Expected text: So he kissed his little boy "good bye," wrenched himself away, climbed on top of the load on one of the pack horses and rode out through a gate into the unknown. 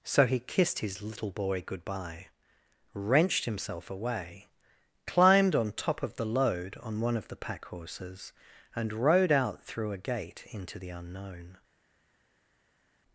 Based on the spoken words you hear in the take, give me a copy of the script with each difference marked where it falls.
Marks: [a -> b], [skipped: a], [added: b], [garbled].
So he kissed his little boy "good bye," wrenched himself away, climbed on top of the load on one of the pack horses and rode out through a gate into the unknown.